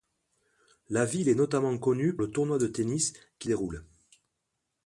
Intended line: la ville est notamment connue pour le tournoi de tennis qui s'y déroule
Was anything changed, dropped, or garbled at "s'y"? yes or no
yes